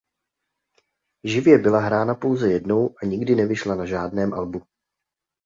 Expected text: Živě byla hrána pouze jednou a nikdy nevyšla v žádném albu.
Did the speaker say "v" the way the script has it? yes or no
no